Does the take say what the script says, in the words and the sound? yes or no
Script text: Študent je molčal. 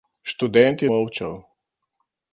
yes